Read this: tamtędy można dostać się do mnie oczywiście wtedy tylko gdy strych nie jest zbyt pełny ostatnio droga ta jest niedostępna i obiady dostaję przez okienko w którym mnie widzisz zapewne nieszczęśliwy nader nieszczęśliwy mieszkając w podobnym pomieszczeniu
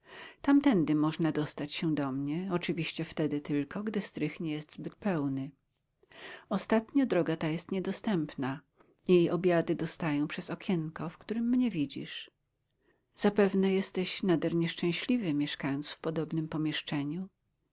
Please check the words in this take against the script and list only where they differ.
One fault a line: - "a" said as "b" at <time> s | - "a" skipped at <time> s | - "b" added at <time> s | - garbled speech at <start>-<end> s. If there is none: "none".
- "nieszczęśliwy" said as "jesteś" at 13.7 s